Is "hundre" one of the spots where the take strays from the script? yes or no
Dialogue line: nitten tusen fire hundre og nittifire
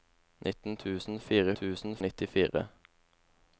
yes